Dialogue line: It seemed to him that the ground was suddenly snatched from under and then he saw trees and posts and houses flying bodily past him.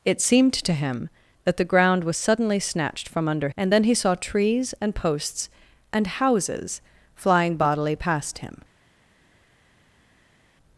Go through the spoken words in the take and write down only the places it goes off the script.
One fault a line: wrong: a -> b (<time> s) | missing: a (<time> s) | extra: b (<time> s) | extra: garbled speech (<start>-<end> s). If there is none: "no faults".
no faults